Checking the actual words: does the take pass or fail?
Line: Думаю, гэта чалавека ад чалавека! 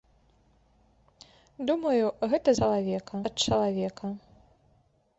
pass